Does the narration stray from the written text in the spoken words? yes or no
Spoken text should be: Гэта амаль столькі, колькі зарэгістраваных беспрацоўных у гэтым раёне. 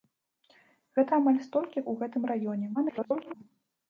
yes